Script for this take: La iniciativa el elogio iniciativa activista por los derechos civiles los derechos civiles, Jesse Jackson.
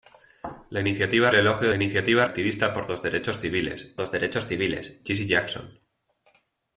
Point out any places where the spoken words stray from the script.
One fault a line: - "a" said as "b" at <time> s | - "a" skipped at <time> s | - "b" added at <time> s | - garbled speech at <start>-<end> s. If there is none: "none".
none